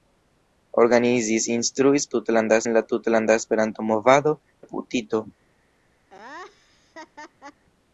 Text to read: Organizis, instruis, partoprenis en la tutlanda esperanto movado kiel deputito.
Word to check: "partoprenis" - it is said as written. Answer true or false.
false